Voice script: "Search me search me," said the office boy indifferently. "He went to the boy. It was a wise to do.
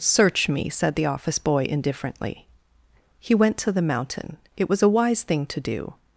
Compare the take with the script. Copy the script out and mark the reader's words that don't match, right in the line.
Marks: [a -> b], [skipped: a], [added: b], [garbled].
"Search me [skipped: search me,"] said the office boy indifferently. "He went to the [boy. -> mountain] It was a wise [added: thing] to do.